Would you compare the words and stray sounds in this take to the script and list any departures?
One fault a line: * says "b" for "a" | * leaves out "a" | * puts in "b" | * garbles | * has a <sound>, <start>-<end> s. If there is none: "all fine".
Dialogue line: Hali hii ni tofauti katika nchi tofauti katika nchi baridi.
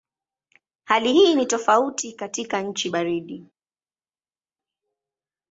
* leaves out "tofauti katika nchi"